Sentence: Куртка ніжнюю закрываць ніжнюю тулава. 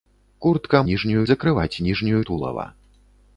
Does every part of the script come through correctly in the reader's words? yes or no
yes